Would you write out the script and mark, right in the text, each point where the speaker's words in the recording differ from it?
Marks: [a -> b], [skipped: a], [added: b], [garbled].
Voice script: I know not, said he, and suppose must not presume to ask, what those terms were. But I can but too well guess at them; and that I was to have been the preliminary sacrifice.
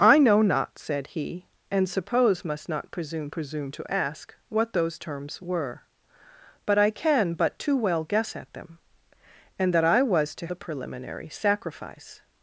I know not, said he, and suppose must not presume [added: presume] to ask, what those terms were. But I can but too well guess at them; and that I was to [skipped: have been] the preliminary sacrifice.